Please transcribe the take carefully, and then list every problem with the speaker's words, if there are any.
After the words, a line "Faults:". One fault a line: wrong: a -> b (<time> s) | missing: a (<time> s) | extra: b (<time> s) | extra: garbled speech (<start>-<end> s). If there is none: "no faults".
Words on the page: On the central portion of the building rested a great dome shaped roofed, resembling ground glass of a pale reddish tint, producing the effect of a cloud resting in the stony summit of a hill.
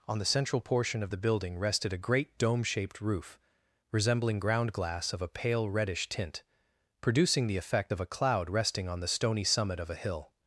On the central portion of the building rested a great dome shaped roof, resembling ground glass of a pale reddish tint, producing the effect of a cloud resting on the stony summit of a hill.
Faults:
wrong: roofed -> roof (3.0 s)
wrong: in -> on (8.9 s)